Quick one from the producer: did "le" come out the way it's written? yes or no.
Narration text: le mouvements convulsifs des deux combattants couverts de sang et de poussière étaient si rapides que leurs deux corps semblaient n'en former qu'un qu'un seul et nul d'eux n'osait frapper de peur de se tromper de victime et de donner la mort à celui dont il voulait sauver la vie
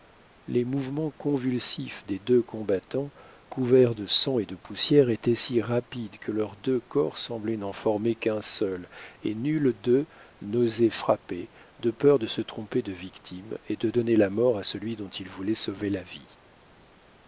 no